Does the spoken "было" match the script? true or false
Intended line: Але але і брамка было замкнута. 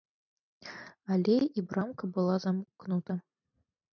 false